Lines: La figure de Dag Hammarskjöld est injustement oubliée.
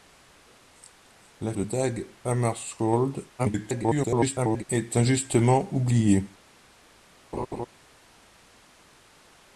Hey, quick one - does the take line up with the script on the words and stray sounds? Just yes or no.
no